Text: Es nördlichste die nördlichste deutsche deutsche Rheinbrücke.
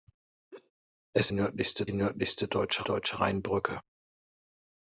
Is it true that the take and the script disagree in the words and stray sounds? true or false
true